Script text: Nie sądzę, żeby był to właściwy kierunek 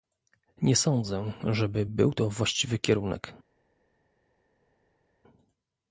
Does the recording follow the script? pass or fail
pass